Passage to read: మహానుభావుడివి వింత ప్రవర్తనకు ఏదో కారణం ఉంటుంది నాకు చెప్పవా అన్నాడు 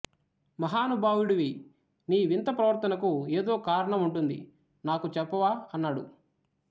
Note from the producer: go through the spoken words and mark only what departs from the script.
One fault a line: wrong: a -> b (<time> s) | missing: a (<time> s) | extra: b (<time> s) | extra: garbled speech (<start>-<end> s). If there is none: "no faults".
extra: నీ (2.1 s)